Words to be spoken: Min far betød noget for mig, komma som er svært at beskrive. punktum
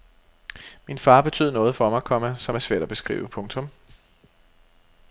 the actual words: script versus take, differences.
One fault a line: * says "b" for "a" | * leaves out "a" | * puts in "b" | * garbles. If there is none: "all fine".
all fine